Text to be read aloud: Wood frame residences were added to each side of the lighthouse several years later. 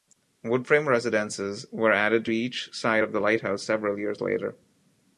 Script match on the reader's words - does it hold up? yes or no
yes